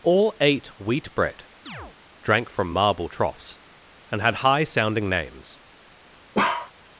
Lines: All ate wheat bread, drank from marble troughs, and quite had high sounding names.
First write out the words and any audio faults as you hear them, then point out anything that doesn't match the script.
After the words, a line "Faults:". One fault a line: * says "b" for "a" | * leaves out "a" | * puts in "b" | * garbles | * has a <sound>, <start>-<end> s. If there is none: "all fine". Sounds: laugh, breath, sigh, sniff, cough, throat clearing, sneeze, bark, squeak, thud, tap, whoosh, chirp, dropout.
All ate wheat bread, drank from marble troughs, and had high sounding names.
Faults:
* has a chirp, 1.7-2.0 s
* leaves out "quite"
* has a bark, 6.3-6.7 s